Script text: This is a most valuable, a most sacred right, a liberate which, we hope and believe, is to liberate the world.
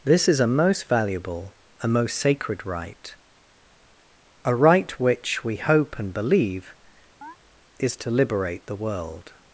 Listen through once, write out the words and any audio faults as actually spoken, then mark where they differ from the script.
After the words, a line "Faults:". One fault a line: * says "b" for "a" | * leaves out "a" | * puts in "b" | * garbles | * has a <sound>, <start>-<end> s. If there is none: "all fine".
This is a most valuable, a most sacred right, a right which, we hope and believe, is to liberate the world.
Faults:
* says "right" for "liberate"
* has a chirp, 7.2-7.4 s